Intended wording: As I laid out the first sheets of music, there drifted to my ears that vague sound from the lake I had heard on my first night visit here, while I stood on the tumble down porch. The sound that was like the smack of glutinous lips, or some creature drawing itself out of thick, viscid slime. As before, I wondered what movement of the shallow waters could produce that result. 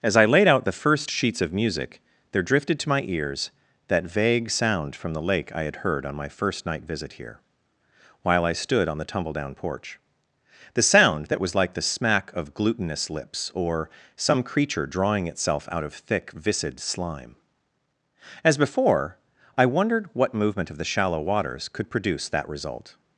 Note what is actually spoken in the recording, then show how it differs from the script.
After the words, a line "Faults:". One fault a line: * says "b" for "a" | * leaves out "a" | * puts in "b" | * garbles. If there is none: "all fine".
As I laid out the first sheets of music, there drifted to my ears that vague sound from the lake I had heard on my first night visit here, while I stood on the tumble down porch. The sound that was like the smack of glutinous lips, or some creature drawing itself out of thick, viscid slime. As before, I wondered what movement of the shallow waters could produce that result.
Faults:
all fine